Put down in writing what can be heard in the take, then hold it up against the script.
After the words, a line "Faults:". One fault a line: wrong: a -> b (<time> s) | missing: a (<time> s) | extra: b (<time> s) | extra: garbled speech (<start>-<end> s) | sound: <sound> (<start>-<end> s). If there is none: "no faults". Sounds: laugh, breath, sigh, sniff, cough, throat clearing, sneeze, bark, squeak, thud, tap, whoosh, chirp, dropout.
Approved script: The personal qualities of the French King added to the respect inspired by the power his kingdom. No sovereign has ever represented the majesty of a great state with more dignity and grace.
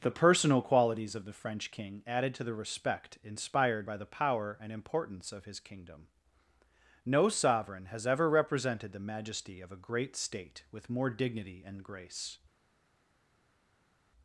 The personal qualities of the French King added to the respect inspired by the power and importance of his kingdom. No sovereign has ever represented the majesty of a great state with more dignity and grace.
Faults:
extra: and importance of (4.6 s)